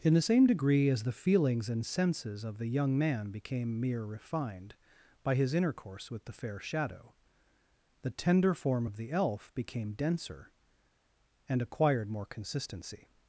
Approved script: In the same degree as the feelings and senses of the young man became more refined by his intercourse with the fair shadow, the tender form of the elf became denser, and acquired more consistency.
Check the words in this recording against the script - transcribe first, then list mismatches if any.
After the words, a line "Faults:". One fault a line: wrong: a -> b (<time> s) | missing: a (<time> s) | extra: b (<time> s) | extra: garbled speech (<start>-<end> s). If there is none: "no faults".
In the same degree as the feelings and senses of the young man became mere refined by his intercourse with the fair shadow, the tender form of the elf became denser, and acquired more consistency.
Faults:
wrong: more -> mere (3.8 s)